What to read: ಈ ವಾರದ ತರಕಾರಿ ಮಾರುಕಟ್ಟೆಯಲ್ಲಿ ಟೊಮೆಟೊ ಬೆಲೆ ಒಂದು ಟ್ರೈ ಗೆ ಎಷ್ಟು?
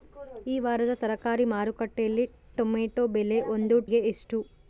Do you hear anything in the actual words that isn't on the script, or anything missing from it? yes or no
yes